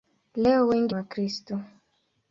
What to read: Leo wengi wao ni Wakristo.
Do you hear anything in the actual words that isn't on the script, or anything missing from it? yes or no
yes